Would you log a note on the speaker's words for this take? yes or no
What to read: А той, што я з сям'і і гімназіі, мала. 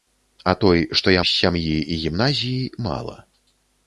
no